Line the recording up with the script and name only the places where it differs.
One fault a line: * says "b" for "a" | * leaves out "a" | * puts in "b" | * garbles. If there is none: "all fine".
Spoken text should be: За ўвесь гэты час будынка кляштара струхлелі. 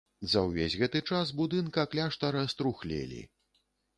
all fine